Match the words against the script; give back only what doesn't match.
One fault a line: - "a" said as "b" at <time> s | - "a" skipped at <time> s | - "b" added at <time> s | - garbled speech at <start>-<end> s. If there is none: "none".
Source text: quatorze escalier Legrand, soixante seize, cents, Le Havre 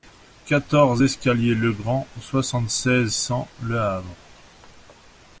none